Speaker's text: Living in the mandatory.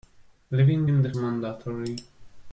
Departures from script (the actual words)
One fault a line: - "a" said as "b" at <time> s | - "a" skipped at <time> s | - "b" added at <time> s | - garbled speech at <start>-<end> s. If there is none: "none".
none